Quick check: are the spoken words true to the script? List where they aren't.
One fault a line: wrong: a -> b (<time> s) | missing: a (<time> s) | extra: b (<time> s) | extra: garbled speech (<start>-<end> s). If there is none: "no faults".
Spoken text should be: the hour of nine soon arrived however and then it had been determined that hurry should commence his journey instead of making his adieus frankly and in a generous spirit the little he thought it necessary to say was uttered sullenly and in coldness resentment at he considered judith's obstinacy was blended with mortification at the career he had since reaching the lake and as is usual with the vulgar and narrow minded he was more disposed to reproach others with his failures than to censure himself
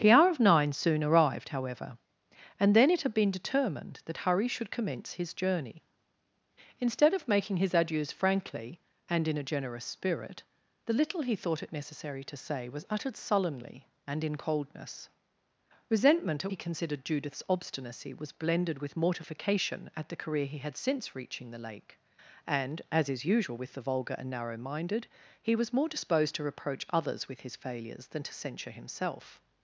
no faults